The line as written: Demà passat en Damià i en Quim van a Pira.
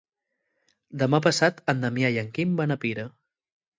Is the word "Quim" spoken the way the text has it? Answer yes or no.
yes